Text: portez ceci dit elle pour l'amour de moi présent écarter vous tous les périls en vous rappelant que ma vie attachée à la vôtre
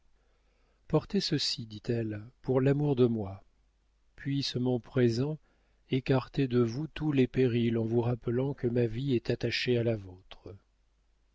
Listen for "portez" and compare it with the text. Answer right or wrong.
right